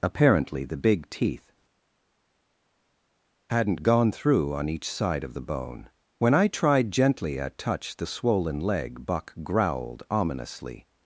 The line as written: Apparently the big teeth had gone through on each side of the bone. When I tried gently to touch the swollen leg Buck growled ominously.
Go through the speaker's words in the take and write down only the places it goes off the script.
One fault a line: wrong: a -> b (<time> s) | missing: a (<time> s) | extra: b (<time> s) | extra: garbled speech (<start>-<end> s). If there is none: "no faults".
wrong: had -> hadn't (3.5 s)
wrong: to -> at (7.4 s)